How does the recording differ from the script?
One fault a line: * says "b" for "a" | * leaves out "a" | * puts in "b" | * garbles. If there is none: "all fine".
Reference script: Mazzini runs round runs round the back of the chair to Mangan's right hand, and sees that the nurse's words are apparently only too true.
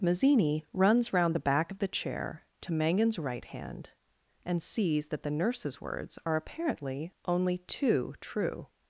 * leaves out "runs round"